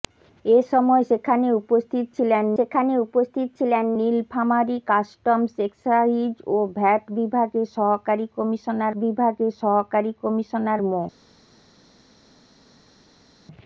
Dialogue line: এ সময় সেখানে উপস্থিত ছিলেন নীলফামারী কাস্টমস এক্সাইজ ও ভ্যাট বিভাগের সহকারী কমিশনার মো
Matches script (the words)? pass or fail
fail